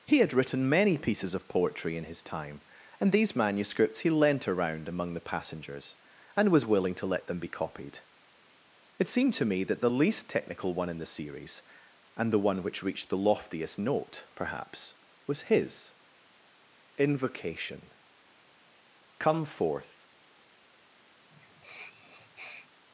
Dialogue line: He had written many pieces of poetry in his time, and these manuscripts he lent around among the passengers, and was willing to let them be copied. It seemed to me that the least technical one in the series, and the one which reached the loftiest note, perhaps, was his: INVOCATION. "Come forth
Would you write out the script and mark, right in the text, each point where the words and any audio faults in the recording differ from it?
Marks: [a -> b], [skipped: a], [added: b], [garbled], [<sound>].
He had written many pieces of poetry in his time, and these manuscripts he lent around among the passengers, and was willing to let them be copied. It seemed to me that the least technical one in the series, and the one which reached the loftiest note, perhaps, was his: INVOCATION. "Come forth [sniff]